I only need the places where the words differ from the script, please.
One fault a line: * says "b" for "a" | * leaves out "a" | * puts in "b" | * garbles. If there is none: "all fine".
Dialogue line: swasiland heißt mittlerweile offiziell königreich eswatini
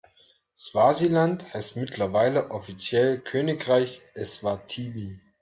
all fine